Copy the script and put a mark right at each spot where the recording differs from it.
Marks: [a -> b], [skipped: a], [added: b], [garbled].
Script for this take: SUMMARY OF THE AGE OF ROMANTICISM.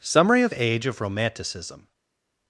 SUMMARY OF [skipped: THE] AGE OF ROMANTICISM.